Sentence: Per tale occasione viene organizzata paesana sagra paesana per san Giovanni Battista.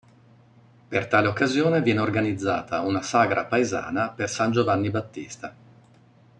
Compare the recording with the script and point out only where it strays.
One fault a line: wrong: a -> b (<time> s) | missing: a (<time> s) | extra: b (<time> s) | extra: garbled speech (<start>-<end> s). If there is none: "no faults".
wrong: paesana -> una (2.8 s)